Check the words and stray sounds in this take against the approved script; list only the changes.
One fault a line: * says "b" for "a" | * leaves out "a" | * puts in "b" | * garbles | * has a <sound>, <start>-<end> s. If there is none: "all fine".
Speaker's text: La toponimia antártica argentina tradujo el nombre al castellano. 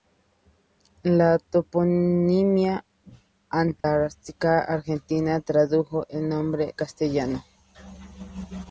* has a dropout, 3.8-3.8 s
* leaves out "al"